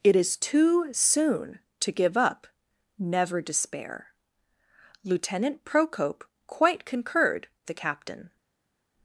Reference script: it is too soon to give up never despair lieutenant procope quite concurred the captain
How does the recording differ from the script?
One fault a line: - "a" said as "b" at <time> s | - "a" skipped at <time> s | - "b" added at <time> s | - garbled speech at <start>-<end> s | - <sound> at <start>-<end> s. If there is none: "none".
none